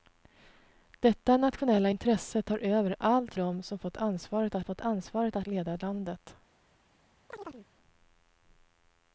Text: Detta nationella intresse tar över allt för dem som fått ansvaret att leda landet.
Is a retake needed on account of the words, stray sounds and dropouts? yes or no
yes